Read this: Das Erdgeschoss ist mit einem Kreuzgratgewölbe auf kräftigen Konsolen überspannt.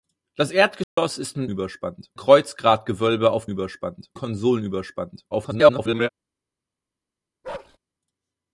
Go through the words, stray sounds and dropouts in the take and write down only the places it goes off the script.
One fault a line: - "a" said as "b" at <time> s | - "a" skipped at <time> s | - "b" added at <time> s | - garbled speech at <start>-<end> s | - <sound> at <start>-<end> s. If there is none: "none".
- dropout at 0.8-1.0 s
- "einem" said as "überspannt" at 1.5 s
- "kräftigen" said as "überspannt" at 3.5 s
- garbled speech at 5.3-6.1 s
- bark at 7.4-7.8 s